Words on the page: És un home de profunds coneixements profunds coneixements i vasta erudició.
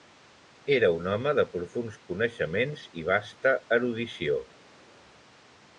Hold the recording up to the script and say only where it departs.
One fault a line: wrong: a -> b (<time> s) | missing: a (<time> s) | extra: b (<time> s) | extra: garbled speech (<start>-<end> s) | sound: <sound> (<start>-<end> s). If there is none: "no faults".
wrong: És -> Era (0.8 s)
missing: profunds coneixements (2.9 s)